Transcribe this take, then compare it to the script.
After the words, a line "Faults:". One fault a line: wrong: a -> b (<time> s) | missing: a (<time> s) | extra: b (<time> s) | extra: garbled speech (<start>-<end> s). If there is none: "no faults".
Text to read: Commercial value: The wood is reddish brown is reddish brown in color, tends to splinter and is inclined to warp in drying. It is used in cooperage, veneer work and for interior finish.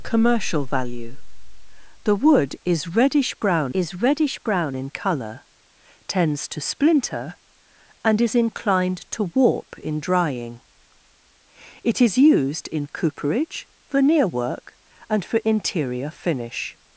Commercial value: The wood is reddish brown is reddish brown in color, tends to splinter and is inclined to warp in drying. It is used in cooperage, veneer work and for interior finish.
Faults:
no faults